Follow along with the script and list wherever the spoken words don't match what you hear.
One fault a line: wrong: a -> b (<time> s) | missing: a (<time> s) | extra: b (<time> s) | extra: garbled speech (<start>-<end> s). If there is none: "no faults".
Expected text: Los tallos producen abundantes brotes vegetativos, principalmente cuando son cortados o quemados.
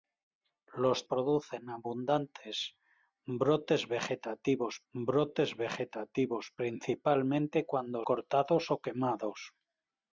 missing: tallos (1.1 s)
extra: brotes vegetativos (4.9 s)
missing: son (8.1 s)